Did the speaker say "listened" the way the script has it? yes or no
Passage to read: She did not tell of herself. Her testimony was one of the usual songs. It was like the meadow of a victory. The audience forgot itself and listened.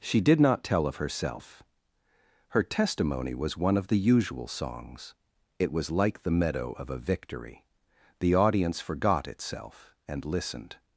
yes